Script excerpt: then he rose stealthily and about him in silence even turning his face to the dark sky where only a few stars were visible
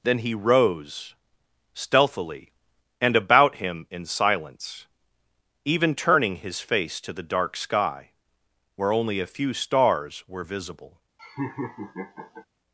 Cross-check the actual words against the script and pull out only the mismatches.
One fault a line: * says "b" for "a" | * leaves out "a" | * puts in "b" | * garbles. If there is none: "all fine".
all fine